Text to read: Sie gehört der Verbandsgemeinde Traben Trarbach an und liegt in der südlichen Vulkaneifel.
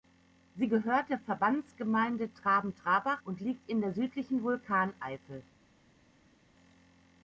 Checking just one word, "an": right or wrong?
wrong